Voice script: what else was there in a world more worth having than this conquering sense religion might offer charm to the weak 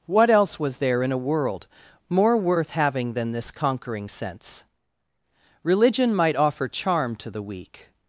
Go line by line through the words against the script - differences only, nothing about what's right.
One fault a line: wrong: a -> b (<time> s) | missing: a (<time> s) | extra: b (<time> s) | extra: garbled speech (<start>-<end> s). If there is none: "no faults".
no faults